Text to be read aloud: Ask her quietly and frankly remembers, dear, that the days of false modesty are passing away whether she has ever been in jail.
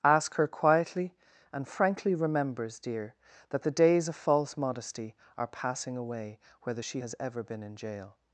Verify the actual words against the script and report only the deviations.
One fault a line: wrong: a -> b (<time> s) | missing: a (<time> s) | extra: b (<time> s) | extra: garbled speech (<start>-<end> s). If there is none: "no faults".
no faults